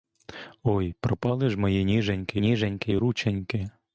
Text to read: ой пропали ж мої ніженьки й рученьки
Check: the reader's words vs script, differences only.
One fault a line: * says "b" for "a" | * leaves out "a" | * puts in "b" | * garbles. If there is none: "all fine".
* puts in "ніженьки"